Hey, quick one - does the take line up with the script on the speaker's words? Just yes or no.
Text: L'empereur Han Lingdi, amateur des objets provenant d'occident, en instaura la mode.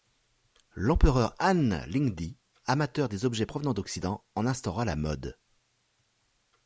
yes